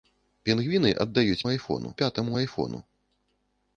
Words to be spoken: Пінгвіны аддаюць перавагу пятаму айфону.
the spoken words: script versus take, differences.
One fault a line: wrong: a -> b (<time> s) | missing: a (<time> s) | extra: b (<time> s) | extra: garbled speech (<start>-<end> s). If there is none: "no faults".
wrong: перавагу -> айфону (1.5 s)